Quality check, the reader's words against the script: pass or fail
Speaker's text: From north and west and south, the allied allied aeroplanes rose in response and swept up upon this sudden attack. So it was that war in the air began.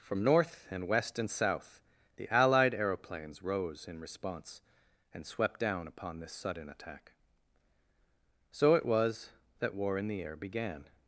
fail